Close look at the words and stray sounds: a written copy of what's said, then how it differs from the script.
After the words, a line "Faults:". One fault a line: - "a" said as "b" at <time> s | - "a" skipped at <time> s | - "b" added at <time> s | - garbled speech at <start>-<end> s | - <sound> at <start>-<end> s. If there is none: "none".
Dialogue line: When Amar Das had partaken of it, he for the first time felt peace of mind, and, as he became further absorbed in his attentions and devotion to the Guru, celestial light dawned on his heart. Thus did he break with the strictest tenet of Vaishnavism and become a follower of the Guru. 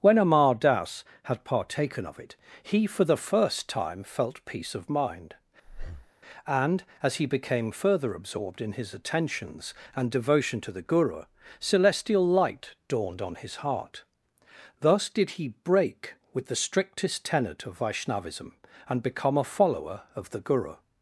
When Amar Das had partaken of it, he for the first time felt peace of mind, and, as he became further absorbed in his attentions and devotion to the Guru, celestial light dawned on his heart. Thus did he break with the strictest tenet of Vaishnavism and become a follower of the Guru.
Faults:
- breath at 5.6-6.1 s